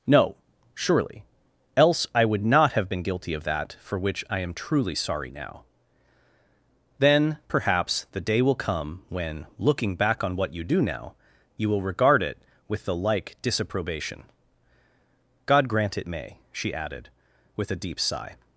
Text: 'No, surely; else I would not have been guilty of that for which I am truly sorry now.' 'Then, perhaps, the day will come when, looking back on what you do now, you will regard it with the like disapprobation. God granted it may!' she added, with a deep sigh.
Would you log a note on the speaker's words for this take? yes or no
yes